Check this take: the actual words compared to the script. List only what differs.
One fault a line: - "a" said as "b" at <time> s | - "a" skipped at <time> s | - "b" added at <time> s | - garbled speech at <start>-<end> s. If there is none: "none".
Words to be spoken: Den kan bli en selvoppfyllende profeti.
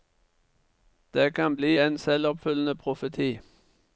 - "Den" said as "Det" at 1.1 s